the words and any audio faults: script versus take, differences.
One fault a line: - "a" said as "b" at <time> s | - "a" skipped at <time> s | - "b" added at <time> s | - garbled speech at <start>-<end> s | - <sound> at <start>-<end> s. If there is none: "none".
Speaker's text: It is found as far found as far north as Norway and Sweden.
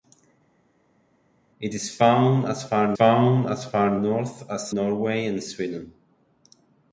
none